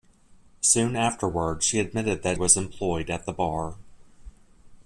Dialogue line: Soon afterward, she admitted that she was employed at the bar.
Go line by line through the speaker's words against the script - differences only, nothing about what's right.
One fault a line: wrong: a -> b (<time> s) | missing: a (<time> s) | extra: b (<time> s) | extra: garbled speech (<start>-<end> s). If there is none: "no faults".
missing: she (2.4 s)